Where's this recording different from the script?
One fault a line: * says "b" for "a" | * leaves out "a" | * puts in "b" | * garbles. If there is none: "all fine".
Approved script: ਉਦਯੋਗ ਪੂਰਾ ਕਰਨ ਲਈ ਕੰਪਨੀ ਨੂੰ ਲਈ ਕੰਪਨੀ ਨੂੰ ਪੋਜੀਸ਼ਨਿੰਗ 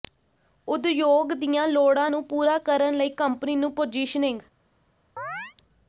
* says "ਦੀਆਂ ਲੋੜਾਂ ਨੂੰ ਪੂਰਾ ਕਰਨ" for "ਪੂਰਾ ਕਰਨ ਲਈ ਕੰਪਨੀ ਨੂੰ"